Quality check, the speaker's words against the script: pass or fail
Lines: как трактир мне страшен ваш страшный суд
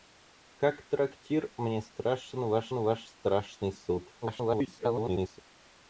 fail